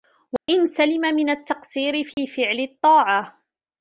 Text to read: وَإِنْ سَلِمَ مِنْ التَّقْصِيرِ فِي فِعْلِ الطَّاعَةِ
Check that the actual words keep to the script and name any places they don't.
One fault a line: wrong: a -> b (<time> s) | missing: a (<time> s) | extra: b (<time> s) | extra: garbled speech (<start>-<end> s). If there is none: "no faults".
no faults